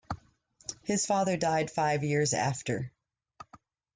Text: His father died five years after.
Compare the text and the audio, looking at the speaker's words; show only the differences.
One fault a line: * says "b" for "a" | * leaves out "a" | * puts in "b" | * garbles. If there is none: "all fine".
all fine